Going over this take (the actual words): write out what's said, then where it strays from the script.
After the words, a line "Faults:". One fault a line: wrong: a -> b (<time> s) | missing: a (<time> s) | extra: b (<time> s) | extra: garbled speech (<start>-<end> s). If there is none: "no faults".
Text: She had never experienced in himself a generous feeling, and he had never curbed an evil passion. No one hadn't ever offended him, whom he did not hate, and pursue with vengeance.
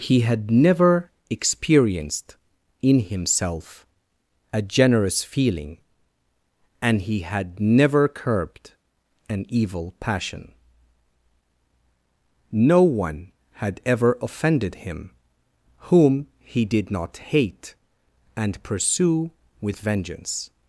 He had never experienced in himself a generous feeling, and he had never curbed an evil passion. No one had ever offended him, whom he did not hate, and pursue with vengeance.
Faults:
wrong: She -> He (0.0 s)
wrong: hadn't -> had (13.6 s)